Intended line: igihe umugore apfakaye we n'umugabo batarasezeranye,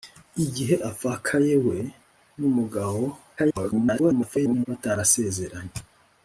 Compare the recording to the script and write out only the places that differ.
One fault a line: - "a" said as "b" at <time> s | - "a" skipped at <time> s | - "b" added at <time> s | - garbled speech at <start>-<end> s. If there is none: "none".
- "umugore" skipped at 0.8 s
- garbled speech at 3.4-4.7 s